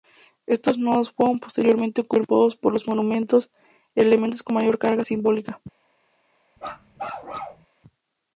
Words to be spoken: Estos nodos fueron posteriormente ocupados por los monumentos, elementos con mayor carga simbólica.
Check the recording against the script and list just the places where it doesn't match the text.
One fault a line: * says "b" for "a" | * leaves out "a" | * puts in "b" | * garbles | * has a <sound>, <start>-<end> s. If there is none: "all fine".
* has a bark, 6.6-7.7 s